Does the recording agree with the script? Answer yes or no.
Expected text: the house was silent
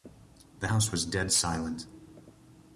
no